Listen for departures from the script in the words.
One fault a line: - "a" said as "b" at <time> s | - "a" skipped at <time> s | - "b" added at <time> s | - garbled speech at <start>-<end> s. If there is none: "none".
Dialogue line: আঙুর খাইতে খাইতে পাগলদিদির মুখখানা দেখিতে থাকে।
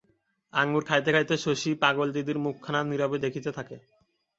- "শশী" added at 1.4 s
- "নীরবে" added at 2.8 s